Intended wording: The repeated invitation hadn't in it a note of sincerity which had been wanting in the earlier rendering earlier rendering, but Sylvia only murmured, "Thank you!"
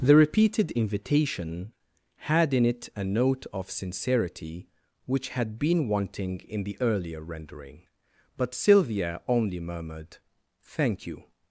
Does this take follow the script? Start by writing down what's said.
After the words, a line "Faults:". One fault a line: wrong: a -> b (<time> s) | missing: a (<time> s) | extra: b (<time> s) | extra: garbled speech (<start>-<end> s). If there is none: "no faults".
The repeated invitation had in it a note of sincerity which had been wanting in the earlier rendering, but Sylvia only murmured, "Thank you!"
Faults:
wrong: hadn't -> had (2.2 s)
missing: earlier rendering (7.8 s)